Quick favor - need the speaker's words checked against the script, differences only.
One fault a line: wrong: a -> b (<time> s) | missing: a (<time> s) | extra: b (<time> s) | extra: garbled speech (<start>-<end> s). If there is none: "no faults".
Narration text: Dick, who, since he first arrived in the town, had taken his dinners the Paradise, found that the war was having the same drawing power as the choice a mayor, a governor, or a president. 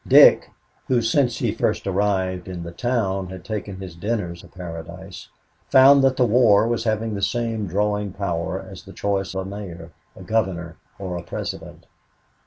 no faults